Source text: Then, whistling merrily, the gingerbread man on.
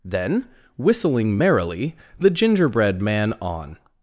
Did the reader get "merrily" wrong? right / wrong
right